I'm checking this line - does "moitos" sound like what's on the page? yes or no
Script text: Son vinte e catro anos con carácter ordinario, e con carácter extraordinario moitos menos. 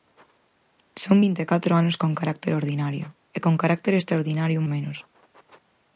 no